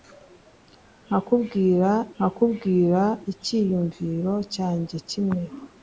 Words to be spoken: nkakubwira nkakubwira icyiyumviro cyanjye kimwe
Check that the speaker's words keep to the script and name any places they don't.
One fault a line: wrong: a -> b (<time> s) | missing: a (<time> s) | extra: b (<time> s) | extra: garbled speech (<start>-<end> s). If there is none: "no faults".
no faults